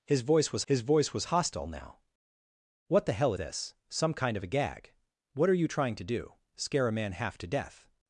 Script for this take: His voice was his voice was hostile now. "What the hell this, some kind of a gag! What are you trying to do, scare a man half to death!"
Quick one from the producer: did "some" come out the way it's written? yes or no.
yes